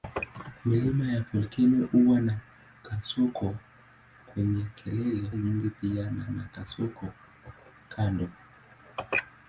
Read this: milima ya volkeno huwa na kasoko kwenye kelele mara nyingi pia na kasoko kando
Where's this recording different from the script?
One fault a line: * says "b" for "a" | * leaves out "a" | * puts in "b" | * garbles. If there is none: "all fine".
* leaves out "mara"
* puts in "na"